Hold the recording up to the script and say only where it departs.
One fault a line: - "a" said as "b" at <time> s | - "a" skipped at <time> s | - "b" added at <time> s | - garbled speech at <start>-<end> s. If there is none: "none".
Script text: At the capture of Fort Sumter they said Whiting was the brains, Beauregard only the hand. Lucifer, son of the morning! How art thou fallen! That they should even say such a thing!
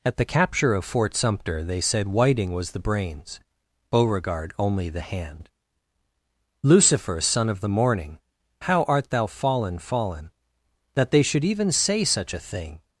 - "fallen" added at 9.8 s